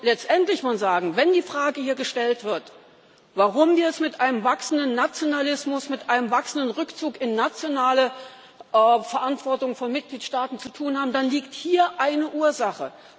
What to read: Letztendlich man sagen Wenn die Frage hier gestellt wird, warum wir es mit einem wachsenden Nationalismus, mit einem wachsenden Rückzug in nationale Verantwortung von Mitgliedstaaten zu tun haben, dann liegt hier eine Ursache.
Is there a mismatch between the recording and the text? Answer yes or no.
no